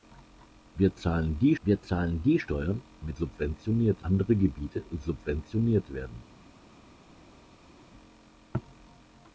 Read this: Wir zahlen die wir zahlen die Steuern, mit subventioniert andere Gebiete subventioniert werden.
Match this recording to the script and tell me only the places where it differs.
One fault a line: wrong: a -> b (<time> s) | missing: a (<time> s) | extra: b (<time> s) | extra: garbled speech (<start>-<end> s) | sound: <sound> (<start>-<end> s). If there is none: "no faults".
no faults